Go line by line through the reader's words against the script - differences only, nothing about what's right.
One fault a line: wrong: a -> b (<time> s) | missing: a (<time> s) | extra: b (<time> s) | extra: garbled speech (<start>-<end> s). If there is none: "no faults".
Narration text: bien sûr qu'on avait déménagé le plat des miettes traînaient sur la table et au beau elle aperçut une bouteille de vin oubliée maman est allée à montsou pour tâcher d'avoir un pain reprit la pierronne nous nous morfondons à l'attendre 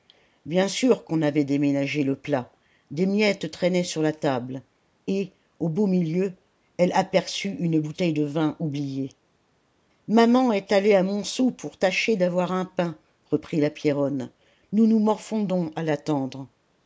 extra: milieu (5.9 s)